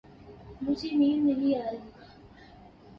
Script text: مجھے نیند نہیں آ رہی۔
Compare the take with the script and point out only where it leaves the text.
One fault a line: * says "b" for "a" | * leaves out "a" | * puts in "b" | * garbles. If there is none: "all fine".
all fine